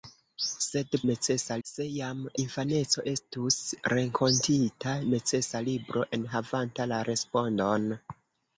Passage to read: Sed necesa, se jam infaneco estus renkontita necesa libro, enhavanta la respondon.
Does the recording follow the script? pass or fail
pass